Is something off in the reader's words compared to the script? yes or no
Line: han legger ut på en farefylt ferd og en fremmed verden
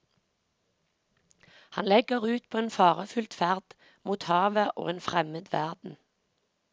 yes